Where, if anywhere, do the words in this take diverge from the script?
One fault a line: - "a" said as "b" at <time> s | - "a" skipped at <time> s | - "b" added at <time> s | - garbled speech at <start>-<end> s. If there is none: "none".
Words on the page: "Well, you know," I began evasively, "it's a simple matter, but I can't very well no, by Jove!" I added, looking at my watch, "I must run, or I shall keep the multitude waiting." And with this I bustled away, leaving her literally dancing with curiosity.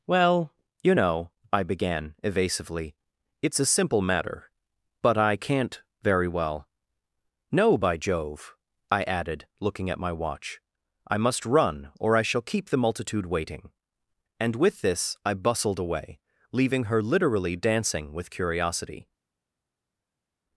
none